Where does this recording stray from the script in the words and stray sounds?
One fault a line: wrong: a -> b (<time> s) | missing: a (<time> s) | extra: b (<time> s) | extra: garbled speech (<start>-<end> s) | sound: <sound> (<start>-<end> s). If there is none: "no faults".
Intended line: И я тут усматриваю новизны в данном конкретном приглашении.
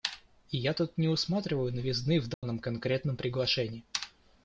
extra: не (1.0 s)
sound: dropout (2.3-2.4 s)